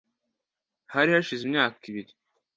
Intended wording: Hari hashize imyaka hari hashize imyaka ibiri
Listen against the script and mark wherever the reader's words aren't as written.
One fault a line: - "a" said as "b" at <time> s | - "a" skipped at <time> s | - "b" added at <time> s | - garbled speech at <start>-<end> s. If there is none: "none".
- "hari hashize imyaka" skipped at 1.8 s